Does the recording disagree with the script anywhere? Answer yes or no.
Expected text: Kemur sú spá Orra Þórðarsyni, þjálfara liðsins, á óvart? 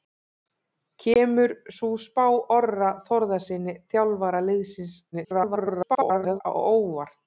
yes